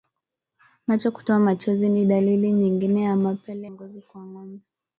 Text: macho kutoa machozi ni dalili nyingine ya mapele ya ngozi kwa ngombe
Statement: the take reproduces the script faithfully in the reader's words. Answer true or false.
false